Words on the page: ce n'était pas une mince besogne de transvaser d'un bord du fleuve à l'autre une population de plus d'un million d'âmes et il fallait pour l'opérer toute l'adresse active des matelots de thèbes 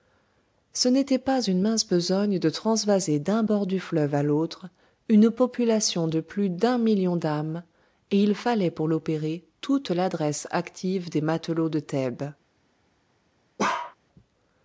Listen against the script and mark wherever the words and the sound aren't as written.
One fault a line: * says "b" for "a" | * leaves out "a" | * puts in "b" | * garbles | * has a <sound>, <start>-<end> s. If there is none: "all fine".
* has a bark, 13.6-14.0 s